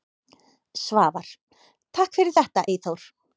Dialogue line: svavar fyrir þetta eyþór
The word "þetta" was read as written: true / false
true